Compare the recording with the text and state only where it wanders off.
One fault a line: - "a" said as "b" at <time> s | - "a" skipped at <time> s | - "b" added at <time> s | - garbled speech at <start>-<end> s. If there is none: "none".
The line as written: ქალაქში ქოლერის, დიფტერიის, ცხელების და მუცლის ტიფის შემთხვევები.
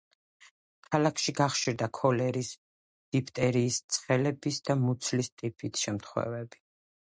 - "გახშირდა" added at 1.4 s